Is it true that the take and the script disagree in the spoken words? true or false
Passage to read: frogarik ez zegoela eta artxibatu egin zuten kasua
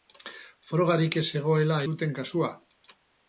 true